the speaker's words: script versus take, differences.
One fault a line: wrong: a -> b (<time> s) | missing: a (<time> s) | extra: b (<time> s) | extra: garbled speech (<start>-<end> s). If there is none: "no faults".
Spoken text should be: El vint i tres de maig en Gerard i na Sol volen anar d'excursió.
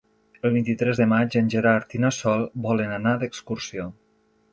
no faults